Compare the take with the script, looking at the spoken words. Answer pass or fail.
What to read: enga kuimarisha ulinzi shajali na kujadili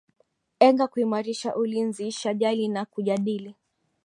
pass